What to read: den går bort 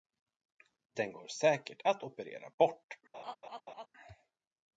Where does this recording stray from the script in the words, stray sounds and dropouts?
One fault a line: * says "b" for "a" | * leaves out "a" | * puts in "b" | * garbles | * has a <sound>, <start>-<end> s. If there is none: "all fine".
* puts in "säkert att operera"
* has a laugh, 3.1-3.9 s